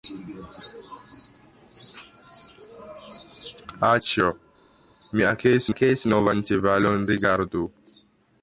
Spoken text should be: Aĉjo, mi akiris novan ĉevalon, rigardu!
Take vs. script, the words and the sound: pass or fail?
fail